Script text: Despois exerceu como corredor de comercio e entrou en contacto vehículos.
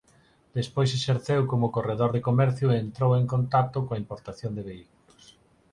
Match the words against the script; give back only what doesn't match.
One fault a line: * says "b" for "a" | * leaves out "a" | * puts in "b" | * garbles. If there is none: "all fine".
* puts in "coa importación de"